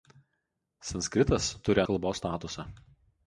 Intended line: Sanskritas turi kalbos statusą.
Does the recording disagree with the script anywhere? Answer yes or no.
no